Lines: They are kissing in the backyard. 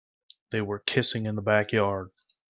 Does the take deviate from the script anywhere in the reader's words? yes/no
yes